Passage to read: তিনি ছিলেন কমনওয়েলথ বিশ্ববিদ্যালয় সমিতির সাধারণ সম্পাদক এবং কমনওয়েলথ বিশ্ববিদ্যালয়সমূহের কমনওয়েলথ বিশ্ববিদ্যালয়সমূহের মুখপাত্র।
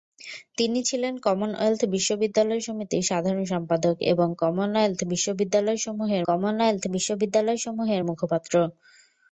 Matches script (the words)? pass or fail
pass